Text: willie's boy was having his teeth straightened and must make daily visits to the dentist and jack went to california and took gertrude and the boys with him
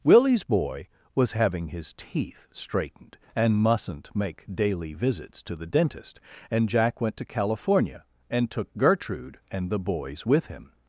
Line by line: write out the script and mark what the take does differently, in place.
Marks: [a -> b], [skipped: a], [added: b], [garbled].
willie's boy was having his teeth straightened and [must -> mustn't] make daily visits to the dentist and jack went to california and took gertrude and the boys with him